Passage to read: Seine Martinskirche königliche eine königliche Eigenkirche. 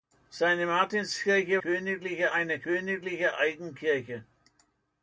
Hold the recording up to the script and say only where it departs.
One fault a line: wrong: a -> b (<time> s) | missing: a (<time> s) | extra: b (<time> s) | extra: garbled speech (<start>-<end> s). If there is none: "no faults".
no faults